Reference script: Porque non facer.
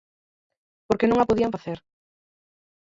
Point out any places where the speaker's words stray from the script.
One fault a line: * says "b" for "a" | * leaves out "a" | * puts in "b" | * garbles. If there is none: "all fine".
* puts in "a podían"